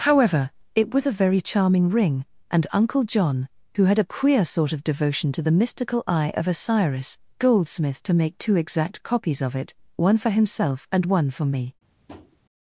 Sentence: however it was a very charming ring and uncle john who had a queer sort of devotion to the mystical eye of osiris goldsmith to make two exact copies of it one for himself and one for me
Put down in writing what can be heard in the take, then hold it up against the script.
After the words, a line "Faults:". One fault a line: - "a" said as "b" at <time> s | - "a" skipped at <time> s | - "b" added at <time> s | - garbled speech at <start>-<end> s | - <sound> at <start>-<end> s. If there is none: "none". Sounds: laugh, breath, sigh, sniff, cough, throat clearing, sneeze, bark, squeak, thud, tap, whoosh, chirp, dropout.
however it was a very charming ring and uncle john who had a queer sort of devotion to the mystical eye of osiris goldsmith to make two exact copies of it one for himself and one for me
Faults:
- tap at 12.1-12.4 s